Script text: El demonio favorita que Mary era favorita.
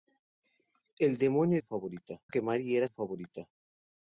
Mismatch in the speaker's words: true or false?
false